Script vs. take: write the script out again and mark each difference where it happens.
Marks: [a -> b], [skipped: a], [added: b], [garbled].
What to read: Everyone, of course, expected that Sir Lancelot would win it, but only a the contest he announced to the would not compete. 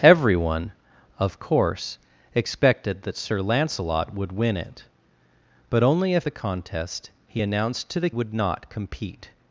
Everyone, of course, expected that Sir Lancelot would win it, but only a the contest he announced to the would not compete.